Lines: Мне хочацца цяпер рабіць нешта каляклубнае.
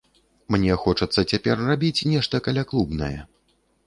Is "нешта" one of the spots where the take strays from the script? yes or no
no